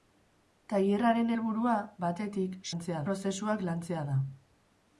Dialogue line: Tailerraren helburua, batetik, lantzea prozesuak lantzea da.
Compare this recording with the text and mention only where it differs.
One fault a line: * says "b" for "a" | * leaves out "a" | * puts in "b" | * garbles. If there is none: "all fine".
all fine